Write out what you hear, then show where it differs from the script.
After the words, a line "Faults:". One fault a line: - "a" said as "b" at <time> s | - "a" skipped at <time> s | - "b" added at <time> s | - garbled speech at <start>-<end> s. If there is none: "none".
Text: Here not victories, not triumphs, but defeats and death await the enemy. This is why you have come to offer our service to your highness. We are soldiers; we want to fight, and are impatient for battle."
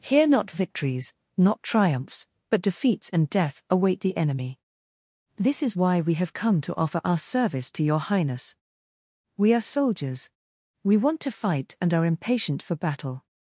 Here not victories, not triumphs, but defeats and death await the enemy. This is why we have come to offer our service to your highness. We are soldiers; we want to fight, and are impatient for battle."
Faults:
- "you" said as "we" at 6.0 s